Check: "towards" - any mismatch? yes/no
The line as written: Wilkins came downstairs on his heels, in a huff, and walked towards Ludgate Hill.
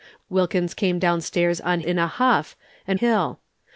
yes